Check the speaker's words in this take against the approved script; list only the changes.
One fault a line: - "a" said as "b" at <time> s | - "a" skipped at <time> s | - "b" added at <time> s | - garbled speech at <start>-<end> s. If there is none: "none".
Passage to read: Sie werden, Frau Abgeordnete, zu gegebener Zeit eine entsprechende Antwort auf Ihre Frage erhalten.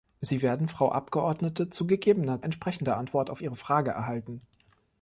- "Zeit eine" skipped at 2.4 s